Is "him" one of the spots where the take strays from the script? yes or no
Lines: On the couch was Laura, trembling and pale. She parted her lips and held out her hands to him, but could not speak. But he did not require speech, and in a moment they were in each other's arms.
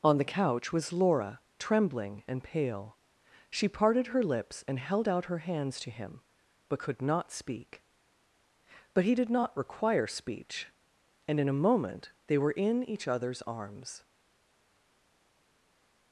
no